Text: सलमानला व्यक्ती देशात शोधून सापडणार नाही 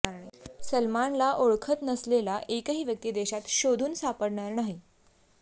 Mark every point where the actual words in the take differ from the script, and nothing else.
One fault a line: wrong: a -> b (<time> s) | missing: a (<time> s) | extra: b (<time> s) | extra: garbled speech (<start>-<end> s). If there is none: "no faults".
extra: ओळखत नसलेला एकही (1.3 s)